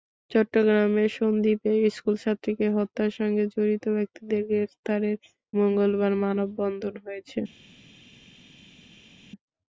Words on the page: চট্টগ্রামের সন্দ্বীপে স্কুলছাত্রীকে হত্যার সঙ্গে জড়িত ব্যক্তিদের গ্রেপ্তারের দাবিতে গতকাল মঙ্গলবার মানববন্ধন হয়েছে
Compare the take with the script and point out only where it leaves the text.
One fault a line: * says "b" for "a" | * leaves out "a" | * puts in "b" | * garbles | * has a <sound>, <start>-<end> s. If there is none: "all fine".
* leaves out "দাবিতে গতকাল"